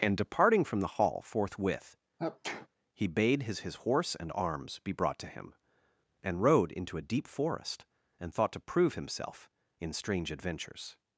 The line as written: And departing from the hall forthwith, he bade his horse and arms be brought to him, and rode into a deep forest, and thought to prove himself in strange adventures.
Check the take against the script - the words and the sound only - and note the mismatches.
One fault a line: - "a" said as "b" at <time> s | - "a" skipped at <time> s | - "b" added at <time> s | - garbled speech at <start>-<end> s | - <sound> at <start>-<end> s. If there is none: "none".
- sneeze at 2.2-2.7 s
- "his" added at 3.6 s